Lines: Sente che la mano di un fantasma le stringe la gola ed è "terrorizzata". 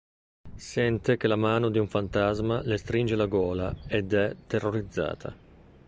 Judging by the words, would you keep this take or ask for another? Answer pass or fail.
pass